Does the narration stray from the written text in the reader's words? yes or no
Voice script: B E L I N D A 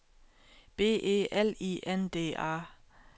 no